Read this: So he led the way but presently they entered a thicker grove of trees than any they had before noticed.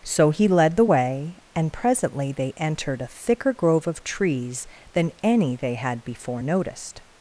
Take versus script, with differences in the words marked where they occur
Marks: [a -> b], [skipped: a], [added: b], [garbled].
So he led the way [but -> and] presently they entered a thicker grove of trees than any they had before noticed.